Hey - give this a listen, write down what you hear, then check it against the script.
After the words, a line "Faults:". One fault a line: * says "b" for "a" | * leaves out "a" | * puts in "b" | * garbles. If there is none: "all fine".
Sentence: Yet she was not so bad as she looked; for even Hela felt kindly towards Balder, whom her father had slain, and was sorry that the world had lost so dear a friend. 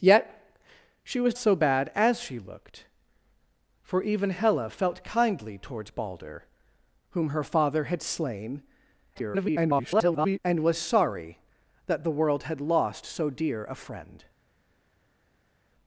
Yet she was so bad as she looked; for even Hela felt kindly towards Balder, whom her father had slain, [garbled] and was sorry that the world had lost so dear a friend.
Faults:
* leaves out "not"
* garbles